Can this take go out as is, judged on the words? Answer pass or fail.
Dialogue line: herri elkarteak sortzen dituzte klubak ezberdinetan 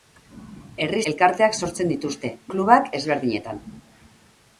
pass